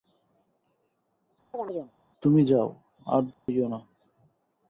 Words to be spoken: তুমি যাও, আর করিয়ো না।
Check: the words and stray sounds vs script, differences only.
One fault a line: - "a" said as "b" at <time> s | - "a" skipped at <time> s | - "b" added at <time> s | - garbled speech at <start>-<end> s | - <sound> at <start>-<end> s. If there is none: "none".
- chirp at 1.5-1.9 s
- dropout at 3.3-3.5 s